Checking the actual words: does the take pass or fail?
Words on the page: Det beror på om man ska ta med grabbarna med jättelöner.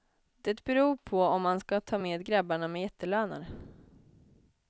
pass